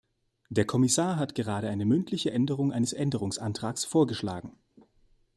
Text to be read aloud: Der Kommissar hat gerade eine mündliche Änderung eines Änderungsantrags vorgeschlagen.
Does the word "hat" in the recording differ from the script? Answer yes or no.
no